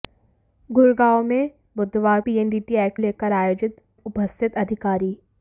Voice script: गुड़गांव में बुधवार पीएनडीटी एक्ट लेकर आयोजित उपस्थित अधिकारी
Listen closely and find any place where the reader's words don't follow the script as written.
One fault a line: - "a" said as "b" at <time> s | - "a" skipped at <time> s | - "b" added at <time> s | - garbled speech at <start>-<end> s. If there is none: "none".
none